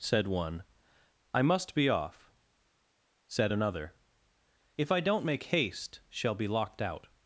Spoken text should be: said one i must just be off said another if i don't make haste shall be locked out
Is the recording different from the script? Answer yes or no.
yes